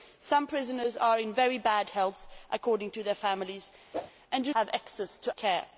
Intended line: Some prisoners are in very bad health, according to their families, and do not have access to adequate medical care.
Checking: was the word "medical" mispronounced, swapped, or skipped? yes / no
yes